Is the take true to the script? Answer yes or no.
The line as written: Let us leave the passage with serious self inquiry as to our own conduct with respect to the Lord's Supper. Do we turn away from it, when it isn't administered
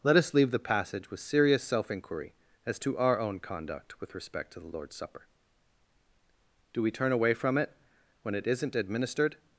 yes